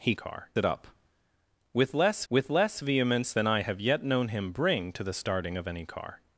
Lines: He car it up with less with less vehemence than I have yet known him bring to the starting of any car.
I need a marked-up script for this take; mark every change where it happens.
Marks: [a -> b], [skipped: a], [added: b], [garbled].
He car it up with less with less vehemence than I have yet known him bring to the starting of any car.